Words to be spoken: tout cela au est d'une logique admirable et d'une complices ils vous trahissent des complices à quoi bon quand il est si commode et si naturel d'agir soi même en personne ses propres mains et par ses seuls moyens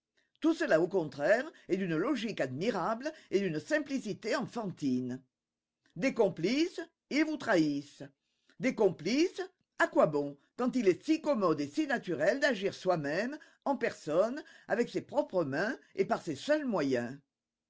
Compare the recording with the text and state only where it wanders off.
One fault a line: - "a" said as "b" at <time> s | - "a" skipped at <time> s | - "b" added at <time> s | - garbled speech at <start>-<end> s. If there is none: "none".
- "contraire" added at 0.9 s
- "simplicité enfantine des" added at 3.6 s
- "avec" added at 14.7 s